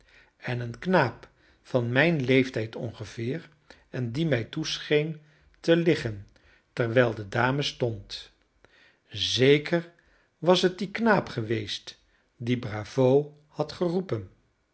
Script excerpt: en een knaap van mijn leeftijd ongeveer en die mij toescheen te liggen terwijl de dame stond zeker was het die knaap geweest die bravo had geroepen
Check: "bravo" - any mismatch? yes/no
no